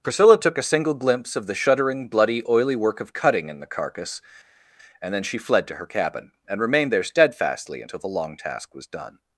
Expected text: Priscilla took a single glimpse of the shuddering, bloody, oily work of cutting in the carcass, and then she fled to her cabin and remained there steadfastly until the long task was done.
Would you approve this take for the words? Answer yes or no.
yes